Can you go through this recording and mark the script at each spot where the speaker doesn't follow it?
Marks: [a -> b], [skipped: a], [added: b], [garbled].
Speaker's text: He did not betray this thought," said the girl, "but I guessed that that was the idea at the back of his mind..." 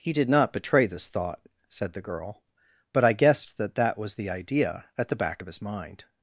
He did not betray this thought," said the girl, "but I guessed that that was the idea at the back of his mind..."